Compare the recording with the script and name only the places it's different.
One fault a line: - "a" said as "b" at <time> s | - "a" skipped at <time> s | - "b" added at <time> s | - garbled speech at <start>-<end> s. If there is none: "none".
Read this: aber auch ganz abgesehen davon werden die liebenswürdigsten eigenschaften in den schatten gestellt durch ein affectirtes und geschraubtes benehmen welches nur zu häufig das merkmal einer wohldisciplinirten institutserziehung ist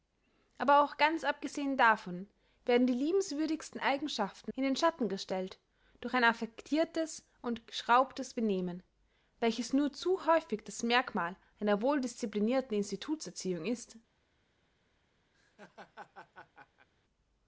none